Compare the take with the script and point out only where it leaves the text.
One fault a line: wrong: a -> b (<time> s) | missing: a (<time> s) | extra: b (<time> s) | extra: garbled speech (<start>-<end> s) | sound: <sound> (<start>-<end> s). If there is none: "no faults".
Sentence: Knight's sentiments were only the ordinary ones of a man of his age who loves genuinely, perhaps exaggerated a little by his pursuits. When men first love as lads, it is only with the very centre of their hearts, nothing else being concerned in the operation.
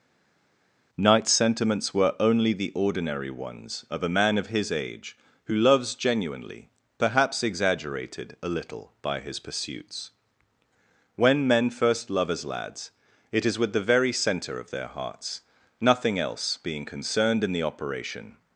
missing: only (13.6 s)